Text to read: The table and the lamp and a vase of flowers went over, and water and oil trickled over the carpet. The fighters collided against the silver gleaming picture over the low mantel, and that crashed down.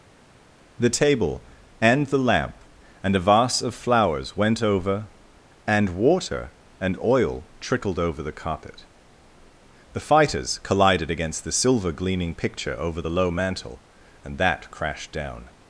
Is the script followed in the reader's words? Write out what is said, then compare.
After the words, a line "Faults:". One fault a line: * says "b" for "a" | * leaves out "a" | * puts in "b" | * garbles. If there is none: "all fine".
The table and the lamp and a vase of flowers went over, and water and oil trickled over the carpet. The fighters collided against the silver gleaming picture over the low mantel, and that crashed down.
Faults:
all fine